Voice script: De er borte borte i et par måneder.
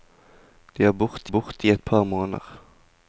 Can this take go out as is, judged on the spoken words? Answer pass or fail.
pass